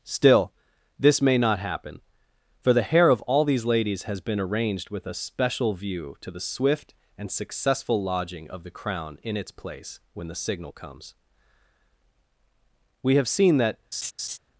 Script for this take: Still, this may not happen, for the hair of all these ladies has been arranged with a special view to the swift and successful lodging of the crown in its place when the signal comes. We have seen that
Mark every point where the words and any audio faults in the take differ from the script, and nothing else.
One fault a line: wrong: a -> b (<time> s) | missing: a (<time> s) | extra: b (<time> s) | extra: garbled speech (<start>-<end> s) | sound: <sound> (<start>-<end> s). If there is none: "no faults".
sound: laugh (13.9-14.4 s)